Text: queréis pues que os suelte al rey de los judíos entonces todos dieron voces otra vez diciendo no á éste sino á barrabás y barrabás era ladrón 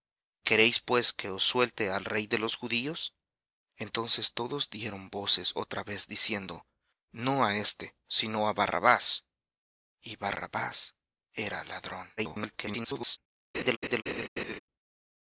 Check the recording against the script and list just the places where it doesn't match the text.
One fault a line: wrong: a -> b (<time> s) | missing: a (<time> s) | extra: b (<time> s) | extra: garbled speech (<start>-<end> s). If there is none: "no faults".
extra: garbled speech (12.2-13.2 s)